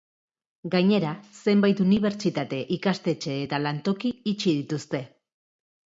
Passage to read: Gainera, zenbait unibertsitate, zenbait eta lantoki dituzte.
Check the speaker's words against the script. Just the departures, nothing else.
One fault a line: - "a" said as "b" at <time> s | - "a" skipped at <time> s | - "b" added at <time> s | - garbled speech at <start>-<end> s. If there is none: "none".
- "zenbait" said as "ikastetxe" at 2.8 s
- "itxi" added at 4.3 s